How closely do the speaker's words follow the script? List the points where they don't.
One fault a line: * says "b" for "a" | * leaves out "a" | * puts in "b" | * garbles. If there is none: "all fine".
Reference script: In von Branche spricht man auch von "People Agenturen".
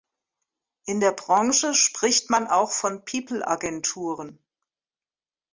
* says "der" for "von"